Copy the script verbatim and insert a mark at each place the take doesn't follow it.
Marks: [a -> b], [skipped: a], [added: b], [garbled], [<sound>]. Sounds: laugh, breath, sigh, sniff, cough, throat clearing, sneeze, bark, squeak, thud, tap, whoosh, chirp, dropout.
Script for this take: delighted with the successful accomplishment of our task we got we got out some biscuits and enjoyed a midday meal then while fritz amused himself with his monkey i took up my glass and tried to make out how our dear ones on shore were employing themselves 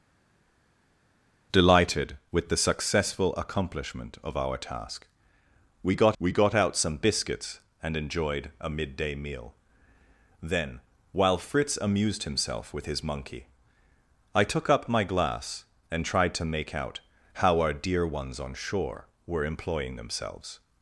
delighted with the successful accomplishment of our task we got we got out some biscuits and enjoyed a midday meal then while fritz amused himself with his monkey i took up my glass and tried to make out how our dear ones on shore were employing themselves